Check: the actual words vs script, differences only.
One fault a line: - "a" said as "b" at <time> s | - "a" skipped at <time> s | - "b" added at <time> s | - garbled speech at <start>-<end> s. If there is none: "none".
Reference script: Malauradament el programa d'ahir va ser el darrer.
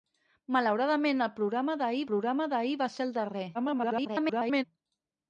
- "programa d'ahir" added at 2.1 s
- garbled speech at 3.5-4.6 s